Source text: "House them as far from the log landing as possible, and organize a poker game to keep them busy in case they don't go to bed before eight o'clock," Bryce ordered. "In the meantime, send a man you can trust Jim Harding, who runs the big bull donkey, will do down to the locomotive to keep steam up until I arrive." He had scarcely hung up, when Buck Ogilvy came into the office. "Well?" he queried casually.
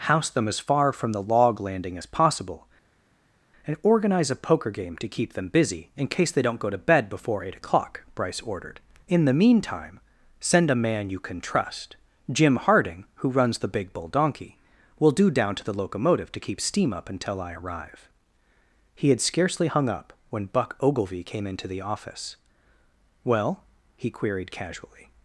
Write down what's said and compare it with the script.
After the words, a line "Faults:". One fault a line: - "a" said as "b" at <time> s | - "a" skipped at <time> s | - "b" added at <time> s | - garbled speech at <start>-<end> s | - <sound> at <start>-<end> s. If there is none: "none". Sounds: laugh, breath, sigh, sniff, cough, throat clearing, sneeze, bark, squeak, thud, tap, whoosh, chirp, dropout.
"House them as far from the log landing as possible, and organize a poker game to keep them busy in case they don't go to bed before eight o'clock," Bryce ordered. "In the meantime, send a man you can trust Jim Harding, who runs the big bull donkey, will do down to the locomotive to keep steam up until I arrive." He had scarcely hung up, when Buck Ogilvy came into the office. "Well?" he queried casually.
Faults:
none